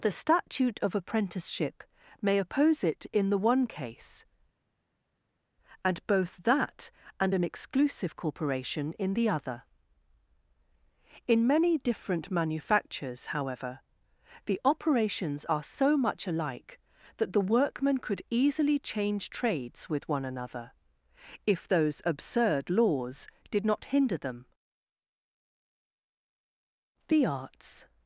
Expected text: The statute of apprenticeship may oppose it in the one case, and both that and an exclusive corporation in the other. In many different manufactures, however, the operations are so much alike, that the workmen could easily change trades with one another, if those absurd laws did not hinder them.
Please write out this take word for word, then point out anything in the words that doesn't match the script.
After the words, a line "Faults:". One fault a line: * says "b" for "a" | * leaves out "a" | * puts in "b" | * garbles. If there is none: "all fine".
The statute of apprenticeship may oppose it in the one case, and both that and an exclusive corporation in the other. In many different manufactures, however, the operations are so much alike, that the workmen could easily change trades with one another, if those absurd laws did not hinder them. The arts
Faults:
* puts in "The arts"